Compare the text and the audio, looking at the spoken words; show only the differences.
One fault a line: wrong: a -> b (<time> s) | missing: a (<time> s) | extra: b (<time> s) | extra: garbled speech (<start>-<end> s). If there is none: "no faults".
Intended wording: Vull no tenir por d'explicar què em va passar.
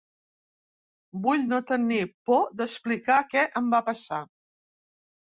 no faults